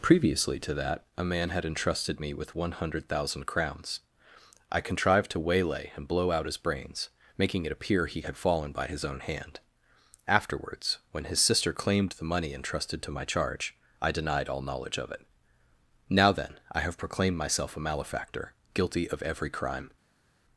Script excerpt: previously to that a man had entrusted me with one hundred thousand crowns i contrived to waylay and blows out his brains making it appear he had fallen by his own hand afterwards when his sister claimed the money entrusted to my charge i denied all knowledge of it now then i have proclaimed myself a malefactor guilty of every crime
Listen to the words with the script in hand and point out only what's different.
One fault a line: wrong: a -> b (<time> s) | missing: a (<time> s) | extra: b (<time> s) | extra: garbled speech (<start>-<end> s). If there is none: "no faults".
wrong: blows -> blow (6.1 s)